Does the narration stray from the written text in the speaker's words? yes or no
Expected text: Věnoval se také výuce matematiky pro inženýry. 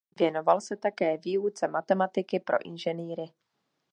no